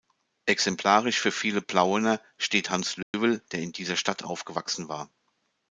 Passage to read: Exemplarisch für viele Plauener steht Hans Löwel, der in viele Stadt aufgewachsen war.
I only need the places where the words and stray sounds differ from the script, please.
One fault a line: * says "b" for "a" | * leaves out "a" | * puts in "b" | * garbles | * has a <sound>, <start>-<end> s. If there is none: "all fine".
* has a dropout, 3.0-3.1 s
* says "dieser" for "viele"